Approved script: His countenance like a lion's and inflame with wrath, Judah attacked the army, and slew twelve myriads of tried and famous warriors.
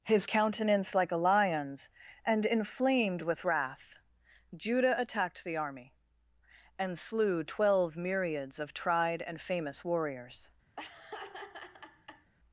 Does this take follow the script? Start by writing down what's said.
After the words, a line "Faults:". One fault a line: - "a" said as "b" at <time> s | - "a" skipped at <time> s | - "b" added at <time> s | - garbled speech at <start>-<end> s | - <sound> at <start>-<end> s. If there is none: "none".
His countenance like a lion's and inflamed with wrath, Judah attacked the army, and slew twelve myriads of tried and famous warriors.
Faults:
- "inflame" said as "inflamed" at 2.4 s
- laugh at 10.8-12.3 s